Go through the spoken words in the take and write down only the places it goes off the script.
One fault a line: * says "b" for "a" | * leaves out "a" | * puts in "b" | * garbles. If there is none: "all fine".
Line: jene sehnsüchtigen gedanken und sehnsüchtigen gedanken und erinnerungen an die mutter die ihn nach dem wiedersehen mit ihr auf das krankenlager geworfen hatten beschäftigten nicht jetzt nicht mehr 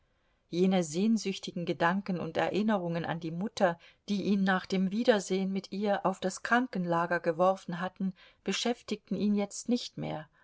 * leaves out "sehnsüchtigen gedanken und"
* says "ihn" for "nicht"